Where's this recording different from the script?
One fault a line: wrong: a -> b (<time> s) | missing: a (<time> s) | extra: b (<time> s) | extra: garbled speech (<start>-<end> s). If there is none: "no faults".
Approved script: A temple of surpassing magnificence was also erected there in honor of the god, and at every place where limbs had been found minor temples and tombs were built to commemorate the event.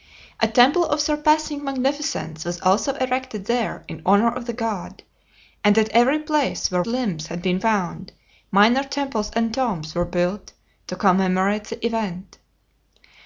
no faults